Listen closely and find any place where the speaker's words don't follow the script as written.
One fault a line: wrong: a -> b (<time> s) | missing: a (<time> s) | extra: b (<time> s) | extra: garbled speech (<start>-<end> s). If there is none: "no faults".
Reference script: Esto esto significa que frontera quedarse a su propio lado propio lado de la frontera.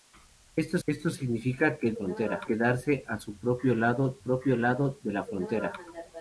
no faults